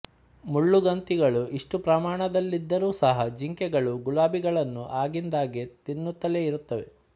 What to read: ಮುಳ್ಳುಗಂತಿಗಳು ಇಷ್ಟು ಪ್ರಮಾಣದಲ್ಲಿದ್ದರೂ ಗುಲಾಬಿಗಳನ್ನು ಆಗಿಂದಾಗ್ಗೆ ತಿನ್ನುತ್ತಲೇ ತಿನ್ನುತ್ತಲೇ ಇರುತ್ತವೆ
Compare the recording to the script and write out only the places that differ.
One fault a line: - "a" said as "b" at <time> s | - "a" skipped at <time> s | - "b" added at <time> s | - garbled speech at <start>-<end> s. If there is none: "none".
- "ಸಹ ಜಿಂಕೆಗಳು" added at 3.0 s
- "ತಿನ್ನುತ್ತಲೇ" skipped at 6.4 s